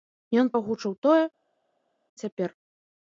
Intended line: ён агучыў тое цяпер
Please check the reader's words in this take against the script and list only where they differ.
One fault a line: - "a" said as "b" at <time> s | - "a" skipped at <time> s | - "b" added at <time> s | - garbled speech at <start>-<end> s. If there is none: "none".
none